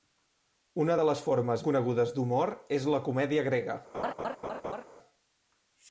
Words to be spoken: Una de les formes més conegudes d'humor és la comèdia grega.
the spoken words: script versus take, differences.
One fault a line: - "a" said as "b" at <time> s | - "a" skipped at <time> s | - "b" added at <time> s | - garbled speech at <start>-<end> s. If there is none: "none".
- "més" skipped at 1.6 s